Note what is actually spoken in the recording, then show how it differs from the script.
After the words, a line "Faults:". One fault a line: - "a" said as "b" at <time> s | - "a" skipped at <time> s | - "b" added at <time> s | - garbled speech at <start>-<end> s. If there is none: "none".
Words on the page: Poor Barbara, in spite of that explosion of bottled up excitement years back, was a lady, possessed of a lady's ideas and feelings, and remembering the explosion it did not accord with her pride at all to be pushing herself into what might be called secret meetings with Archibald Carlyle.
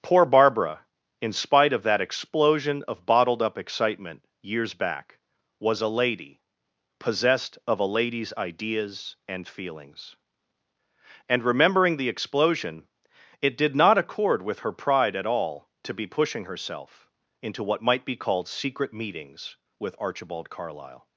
Poor Barbara, in spite of that explosion of bottled up excitement years back, was a lady, possessed of a lady's ideas and feelings, and remembering the explosion it did not accord with her pride at all to be pushing herself into what might be called secret meetings with Archibald Carlyle.
Faults:
none